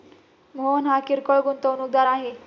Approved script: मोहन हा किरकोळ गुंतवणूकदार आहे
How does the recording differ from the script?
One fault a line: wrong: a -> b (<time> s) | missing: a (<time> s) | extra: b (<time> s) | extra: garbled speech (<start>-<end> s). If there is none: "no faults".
no faults